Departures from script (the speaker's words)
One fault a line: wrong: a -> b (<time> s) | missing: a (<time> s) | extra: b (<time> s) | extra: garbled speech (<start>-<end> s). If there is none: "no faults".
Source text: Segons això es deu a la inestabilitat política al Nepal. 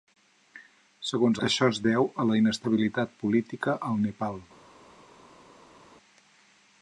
no faults